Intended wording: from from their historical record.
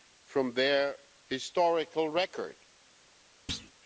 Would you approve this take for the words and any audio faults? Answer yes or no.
no